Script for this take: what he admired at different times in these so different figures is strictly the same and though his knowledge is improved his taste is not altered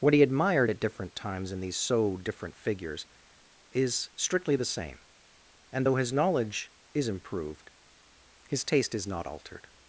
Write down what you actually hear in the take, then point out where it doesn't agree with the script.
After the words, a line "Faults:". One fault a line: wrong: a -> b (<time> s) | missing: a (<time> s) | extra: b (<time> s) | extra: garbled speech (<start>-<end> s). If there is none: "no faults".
what he admired at different times in these so different figures is strictly the same and though his knowledge is improved his taste is not altered
Faults:
no faults